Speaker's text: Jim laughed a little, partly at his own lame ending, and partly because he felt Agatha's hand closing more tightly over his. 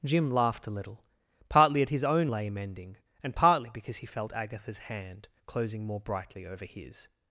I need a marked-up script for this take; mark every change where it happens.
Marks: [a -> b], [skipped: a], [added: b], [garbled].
Jim laughed a little, partly at his own lame ending, and partly because he felt Agatha's hand closing more [tightly -> brightly] over his.